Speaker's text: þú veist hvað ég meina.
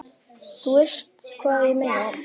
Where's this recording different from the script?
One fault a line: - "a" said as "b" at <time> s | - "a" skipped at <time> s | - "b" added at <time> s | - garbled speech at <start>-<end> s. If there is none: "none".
none